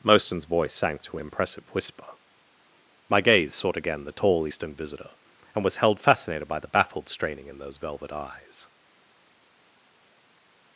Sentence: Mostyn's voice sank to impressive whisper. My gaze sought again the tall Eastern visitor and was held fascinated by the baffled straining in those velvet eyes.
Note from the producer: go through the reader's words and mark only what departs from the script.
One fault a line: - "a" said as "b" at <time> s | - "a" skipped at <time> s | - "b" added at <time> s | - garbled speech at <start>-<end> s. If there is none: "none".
none